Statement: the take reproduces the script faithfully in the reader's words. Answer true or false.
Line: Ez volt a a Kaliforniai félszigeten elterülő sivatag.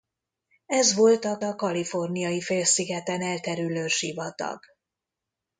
true